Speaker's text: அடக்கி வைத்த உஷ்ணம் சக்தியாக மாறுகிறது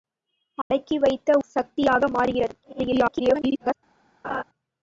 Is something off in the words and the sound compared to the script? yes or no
yes